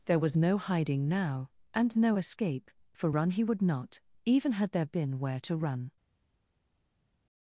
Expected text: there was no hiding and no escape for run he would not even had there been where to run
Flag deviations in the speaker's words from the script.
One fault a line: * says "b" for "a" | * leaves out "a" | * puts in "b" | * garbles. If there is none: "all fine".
* puts in "now"